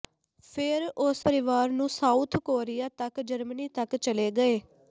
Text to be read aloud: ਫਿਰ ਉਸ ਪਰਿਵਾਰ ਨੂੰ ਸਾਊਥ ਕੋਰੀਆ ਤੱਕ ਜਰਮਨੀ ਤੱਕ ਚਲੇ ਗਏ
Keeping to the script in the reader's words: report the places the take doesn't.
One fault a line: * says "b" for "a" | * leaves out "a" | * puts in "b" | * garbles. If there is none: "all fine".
all fine